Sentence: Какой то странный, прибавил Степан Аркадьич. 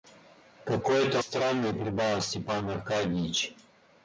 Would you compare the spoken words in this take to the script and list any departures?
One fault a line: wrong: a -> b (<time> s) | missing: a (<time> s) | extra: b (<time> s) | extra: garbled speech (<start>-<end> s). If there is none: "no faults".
no faults